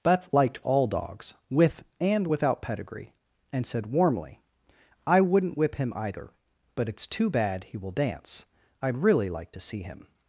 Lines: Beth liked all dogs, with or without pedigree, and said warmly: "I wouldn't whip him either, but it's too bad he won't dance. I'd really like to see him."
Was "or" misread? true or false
true